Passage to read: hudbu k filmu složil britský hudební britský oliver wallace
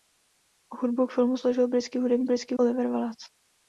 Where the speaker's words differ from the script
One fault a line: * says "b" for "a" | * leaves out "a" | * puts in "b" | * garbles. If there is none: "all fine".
all fine